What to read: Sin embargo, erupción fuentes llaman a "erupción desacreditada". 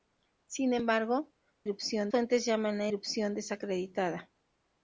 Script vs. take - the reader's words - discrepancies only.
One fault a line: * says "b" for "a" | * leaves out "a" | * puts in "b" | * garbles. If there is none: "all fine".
all fine